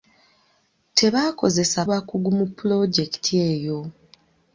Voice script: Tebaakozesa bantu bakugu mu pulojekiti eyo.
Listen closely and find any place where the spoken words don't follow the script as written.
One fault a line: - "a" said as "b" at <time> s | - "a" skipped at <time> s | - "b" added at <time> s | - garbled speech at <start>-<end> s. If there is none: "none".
- "bantu" skipped at 1.8 s